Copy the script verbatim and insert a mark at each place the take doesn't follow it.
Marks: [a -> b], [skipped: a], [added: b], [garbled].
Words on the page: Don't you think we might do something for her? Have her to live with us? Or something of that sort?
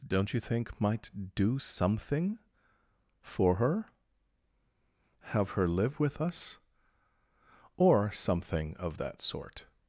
Don't you think [skipped: we] might do something for her? Have her [skipped: to] live with us? Or something of that sort?